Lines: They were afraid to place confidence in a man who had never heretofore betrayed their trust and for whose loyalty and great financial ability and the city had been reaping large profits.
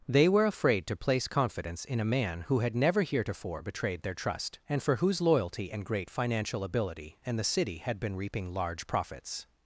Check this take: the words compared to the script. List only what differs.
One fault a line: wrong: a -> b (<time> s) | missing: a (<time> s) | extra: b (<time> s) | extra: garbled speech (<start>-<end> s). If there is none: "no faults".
no faults